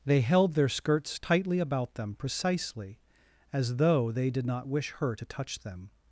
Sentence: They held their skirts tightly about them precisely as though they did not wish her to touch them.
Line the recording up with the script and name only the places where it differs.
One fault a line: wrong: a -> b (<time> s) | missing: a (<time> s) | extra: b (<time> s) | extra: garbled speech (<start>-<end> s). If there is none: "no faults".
no faults